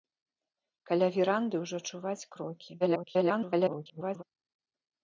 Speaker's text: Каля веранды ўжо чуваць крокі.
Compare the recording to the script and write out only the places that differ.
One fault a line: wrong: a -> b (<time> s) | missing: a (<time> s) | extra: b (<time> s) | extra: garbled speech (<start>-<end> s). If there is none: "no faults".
extra: garbled speech (2.8-4.2 s)